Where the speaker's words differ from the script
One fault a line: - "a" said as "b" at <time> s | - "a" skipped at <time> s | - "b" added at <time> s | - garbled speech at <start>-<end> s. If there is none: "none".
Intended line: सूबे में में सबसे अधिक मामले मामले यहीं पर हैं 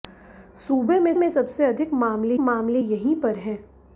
none